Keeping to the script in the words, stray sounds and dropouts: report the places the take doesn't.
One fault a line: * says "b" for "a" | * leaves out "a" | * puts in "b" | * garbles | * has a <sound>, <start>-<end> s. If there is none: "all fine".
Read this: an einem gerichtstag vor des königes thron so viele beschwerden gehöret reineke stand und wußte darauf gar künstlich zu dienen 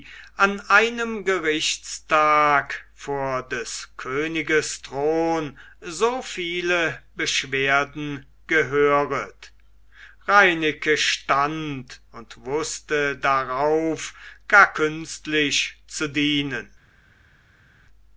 all fine